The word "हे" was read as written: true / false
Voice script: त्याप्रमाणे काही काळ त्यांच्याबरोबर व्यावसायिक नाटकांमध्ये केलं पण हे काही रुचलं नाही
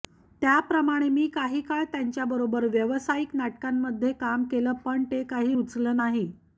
false